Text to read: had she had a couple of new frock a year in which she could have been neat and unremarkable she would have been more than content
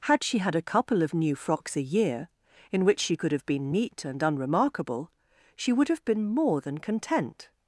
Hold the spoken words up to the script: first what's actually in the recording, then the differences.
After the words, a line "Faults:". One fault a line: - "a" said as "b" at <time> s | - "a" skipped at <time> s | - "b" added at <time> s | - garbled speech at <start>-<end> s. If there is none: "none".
had she had a couple of new frocks a year in which she could have been neat and unremarkable she would have been more than content
Faults:
- "frock" said as "frocks" at 1.4 s